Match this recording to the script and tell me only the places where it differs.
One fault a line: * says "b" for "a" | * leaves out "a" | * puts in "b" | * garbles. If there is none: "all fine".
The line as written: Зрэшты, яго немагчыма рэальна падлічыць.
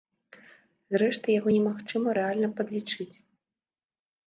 all fine